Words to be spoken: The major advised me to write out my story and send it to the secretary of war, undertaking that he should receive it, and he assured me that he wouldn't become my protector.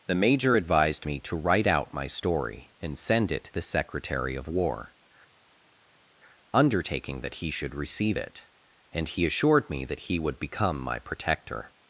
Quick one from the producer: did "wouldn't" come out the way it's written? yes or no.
no